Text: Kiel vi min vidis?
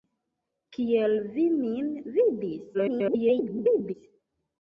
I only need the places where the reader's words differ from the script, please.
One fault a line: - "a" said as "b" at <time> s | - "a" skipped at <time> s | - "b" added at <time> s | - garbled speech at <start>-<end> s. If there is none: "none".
- garbled speech at 2.7-3.9 s